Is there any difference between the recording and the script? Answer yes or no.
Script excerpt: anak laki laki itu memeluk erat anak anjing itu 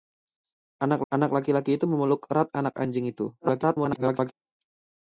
yes